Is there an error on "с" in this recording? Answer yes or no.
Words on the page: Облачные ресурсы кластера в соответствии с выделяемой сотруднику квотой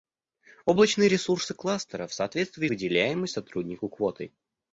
yes